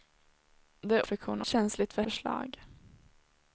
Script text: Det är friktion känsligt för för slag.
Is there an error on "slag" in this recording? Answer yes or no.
no